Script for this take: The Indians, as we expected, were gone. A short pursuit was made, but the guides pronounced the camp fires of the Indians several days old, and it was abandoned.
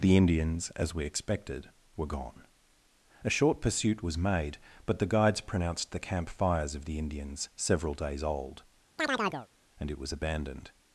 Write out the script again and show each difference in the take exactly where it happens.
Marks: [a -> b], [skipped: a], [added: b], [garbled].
The Indians, as we expected, were gone. A short pursuit was made, but the guides pronounced the camp fires of the Indians several days old, and it was abandoned.